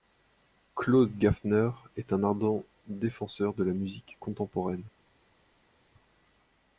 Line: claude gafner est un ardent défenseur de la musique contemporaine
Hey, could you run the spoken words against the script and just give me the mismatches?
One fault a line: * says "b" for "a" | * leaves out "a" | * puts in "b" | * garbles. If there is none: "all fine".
all fine